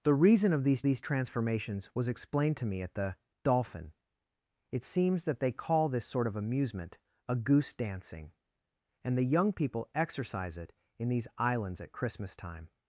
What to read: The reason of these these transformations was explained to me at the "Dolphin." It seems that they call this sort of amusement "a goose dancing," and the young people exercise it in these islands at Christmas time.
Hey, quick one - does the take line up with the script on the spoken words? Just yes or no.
yes